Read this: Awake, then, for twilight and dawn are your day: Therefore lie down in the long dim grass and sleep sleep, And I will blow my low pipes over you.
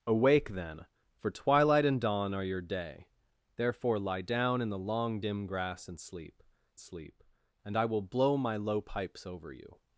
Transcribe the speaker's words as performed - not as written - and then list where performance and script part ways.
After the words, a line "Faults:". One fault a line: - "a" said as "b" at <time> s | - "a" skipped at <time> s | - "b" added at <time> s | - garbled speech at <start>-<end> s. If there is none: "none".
Awake, then, for twilight and dawn are your day: Therefore lie down in the long dim grass and sleep sleep, And I will blow my low pipes over you.
Faults:
none